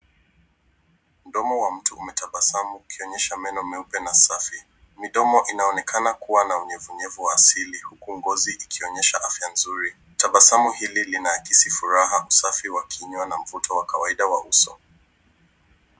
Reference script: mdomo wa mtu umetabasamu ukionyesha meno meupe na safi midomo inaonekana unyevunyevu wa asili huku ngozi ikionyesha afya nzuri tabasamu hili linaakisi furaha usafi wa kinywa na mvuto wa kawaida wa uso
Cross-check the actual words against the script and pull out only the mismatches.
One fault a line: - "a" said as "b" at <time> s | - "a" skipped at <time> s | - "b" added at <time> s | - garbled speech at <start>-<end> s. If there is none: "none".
- "kuwa na" added at 6.1 s